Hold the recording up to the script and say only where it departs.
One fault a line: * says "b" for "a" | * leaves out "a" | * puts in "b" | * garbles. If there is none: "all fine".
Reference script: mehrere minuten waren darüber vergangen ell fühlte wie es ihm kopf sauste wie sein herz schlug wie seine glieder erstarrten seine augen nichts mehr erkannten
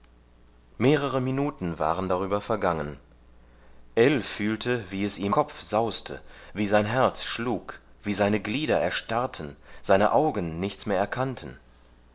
all fine